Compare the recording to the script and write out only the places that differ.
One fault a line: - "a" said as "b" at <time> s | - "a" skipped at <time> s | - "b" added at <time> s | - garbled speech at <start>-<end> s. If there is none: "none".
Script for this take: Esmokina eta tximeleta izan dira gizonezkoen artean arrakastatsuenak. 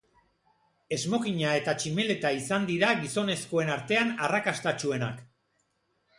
none